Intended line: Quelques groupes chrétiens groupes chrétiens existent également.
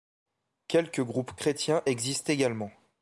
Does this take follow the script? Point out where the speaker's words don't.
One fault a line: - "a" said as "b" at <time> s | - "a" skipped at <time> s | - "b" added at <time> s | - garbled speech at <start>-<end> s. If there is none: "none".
- "groupes chrétiens" skipped at 1.8 s